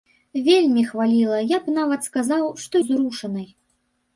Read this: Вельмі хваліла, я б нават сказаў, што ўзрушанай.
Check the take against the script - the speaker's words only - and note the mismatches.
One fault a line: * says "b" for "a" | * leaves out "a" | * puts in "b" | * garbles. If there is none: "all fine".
all fine